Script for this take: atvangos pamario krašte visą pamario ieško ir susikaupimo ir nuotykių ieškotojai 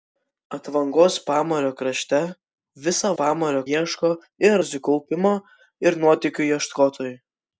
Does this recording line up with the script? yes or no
yes